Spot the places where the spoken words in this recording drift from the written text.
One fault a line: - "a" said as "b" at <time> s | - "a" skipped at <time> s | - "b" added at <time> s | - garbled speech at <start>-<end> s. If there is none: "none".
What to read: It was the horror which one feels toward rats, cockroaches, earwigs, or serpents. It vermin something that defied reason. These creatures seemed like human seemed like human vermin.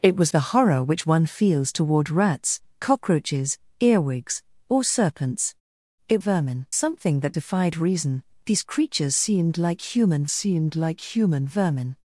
none